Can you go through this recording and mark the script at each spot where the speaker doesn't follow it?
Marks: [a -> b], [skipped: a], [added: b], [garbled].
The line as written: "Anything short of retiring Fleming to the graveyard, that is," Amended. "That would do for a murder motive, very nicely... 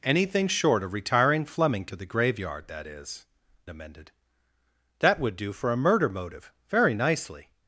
"Anything short of retiring Fleming to the graveyard, that is," Amended. "That would do for a murder motive, very nicely...